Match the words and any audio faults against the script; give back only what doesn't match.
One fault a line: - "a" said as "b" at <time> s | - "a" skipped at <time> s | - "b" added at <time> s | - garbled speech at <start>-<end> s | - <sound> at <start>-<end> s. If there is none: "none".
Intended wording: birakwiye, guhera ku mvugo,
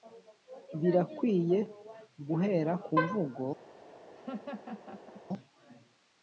- laugh at 4.1-5.2 s